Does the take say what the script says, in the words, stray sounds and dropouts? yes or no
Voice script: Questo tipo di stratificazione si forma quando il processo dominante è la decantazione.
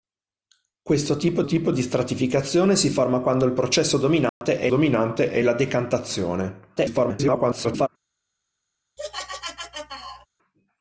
no